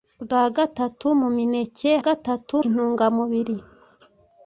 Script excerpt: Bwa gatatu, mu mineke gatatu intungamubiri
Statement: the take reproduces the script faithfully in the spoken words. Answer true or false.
true